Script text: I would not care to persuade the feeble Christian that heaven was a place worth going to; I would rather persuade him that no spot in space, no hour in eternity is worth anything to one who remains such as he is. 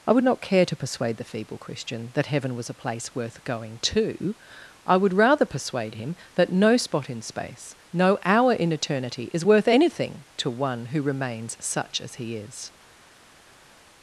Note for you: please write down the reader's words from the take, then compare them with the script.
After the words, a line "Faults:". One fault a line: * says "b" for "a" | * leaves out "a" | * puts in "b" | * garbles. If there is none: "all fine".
I would not care to persuade the feeble Christian that heaven was a place worth going to; I would rather persuade him that no spot in space, no hour in eternity is worth anything to one who remains such as he is.
Faults:
all fine